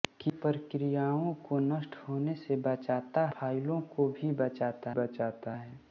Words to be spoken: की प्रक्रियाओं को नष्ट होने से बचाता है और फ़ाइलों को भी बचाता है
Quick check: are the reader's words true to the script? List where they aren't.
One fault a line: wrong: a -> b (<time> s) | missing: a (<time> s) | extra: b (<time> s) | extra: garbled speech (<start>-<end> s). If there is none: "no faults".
missing: है और (3.2 s)
extra: बचाता (4.9 s)